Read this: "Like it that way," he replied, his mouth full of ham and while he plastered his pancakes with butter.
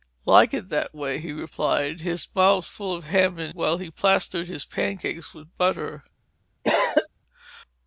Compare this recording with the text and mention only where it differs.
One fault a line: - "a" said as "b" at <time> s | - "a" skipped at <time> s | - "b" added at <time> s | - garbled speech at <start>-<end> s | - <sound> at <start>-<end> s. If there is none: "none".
- cough at 6.6-7.1 s